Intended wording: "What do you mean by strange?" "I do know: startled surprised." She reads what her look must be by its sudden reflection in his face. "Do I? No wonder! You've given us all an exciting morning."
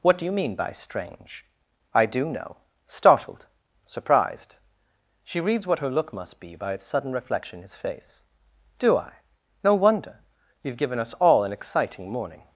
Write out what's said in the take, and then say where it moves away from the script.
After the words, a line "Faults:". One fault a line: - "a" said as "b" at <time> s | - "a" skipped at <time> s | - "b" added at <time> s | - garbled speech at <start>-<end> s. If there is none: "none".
"What do you mean by strange?" "I do know: startled surprised." She reads what her look must be by its sudden reflection in his face. "Do I? No wonder! You've given us all an exciting morning."
Faults:
none